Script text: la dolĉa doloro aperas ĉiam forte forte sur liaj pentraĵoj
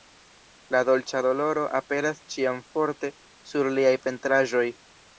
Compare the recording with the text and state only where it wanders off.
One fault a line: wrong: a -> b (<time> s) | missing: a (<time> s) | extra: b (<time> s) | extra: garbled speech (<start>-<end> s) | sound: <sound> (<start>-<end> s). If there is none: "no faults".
missing: forte (3.1 s)